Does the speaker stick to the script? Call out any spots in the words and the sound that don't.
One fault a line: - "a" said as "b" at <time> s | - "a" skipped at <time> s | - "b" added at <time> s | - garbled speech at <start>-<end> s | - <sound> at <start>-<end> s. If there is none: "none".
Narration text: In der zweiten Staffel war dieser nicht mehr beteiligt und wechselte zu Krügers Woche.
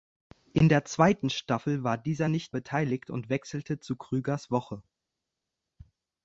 - "mehr" skipped at 2.6 s